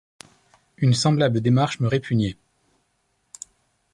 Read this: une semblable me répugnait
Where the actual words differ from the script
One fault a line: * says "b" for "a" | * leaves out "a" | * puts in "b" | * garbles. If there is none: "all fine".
* puts in "démarche"